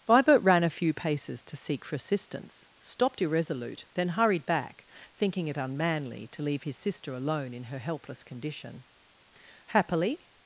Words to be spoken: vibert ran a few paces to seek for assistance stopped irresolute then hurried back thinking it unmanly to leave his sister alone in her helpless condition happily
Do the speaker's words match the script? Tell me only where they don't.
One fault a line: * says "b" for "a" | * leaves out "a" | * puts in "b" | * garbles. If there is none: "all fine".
all fine